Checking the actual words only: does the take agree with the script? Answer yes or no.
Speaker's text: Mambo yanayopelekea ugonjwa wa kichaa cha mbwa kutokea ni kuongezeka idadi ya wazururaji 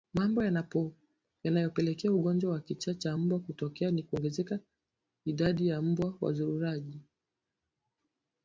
no